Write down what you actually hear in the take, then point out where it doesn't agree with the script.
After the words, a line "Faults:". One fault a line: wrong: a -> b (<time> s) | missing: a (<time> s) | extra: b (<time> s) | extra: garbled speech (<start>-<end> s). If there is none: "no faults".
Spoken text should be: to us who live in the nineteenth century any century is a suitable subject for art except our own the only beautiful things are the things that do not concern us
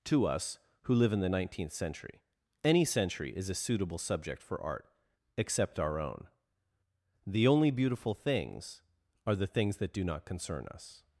to us who live in the nineteenth century any century is a suitable subject for art except our own the only beautiful things are the things that do not concern us
Faults:
no faults